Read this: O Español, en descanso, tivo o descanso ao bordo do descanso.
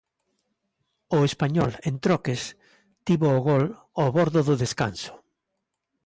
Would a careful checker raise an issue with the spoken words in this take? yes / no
yes